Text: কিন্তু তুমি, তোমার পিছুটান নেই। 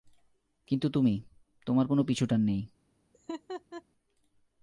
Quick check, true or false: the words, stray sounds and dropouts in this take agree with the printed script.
false